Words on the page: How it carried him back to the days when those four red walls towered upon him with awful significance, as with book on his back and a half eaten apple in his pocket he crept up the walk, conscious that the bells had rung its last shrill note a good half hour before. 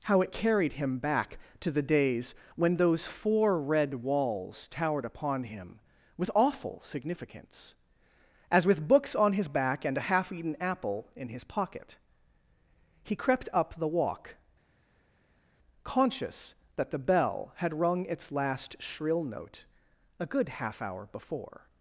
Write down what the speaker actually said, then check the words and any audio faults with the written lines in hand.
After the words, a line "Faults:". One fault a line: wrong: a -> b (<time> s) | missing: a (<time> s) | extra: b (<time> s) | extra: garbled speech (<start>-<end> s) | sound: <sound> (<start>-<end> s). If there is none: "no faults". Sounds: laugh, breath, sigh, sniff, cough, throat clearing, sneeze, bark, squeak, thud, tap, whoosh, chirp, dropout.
How it carried him back to the days when those four red walls towered upon him with awful significance, as with books on his back and a half eaten apple in his pocket he crept up the walk, conscious that the bell had rung its last shrill note a good half hour before.
Faults:
wrong: book -> books (8.9 s)
wrong: bells -> bell (17.0 s)